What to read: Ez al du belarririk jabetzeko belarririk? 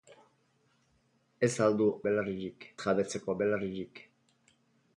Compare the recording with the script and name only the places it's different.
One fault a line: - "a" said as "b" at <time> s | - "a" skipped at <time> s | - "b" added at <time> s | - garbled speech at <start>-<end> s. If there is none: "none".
none